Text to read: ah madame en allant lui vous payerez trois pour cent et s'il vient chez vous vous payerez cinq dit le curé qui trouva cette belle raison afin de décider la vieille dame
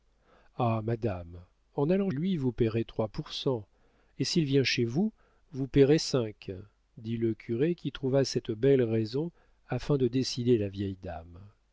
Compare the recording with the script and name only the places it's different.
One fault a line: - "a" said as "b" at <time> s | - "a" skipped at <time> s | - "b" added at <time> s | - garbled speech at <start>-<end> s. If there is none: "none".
none